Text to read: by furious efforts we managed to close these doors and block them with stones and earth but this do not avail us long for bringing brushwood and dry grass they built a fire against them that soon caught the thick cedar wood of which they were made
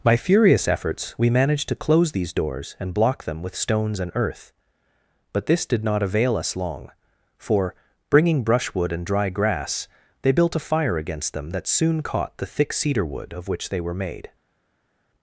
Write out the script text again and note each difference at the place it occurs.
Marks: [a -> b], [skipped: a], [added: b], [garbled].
by furious efforts we managed to close these doors and block them with stones and earth but this [do -> did] not avail us long for bringing brushwood and dry grass they built a fire against them that soon caught the thick cedar wood of which they were made